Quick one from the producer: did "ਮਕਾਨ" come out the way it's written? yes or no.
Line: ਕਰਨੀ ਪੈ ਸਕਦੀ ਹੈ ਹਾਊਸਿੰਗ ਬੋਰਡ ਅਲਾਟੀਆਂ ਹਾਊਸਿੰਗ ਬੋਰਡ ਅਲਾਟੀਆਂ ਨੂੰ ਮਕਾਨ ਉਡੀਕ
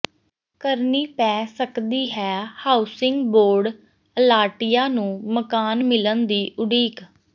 no